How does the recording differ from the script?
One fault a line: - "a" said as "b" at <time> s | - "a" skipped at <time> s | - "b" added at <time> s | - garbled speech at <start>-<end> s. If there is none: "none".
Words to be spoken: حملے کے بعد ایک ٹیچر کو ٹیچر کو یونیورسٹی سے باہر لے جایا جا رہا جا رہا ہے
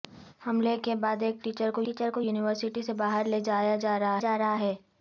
none